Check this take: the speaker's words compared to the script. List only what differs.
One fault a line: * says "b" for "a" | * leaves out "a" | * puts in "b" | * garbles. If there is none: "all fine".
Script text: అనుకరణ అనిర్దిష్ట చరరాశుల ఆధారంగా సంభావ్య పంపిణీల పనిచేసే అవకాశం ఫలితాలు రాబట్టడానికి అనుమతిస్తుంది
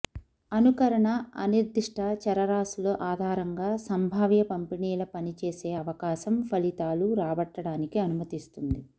all fine